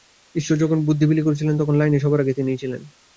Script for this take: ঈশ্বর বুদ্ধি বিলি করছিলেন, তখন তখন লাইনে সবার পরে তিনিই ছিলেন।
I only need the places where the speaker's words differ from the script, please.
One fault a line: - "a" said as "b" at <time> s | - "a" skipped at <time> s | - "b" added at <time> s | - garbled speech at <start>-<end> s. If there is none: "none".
- "যখন" added at 0.6 s
- "তখন" skipped at 1.8 s
- "পরে" said as "আগে" at 2.2 s